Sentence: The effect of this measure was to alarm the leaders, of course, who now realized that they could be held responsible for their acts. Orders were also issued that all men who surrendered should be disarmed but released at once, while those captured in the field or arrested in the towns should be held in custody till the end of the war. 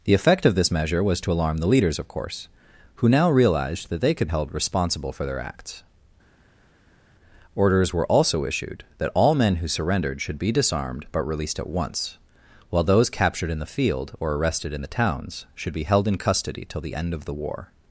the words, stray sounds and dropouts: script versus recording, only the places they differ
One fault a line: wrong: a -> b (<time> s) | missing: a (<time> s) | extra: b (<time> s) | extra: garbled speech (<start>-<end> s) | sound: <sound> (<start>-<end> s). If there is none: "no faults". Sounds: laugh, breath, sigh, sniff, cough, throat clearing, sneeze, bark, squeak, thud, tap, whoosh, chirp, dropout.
missing: be (4.3 s)